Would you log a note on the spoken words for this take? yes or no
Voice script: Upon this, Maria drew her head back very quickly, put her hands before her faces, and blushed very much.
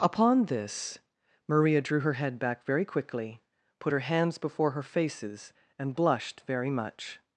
no